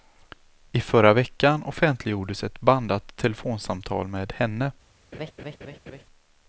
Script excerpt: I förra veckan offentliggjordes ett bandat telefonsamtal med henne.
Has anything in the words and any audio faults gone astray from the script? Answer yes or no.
yes